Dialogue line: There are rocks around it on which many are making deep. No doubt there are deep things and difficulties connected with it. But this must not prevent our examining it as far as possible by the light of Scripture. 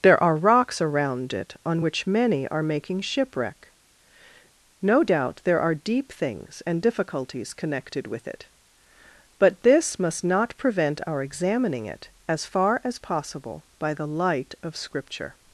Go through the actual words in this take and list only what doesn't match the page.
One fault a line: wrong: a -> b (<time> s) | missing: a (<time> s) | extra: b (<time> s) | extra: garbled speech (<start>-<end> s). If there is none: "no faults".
wrong: deep -> shipwreck (3.0 s)